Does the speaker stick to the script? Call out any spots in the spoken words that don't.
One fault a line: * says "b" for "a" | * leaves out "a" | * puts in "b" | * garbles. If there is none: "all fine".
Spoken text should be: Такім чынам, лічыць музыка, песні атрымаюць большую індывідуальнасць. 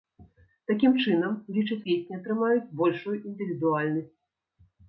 * leaves out "музыка"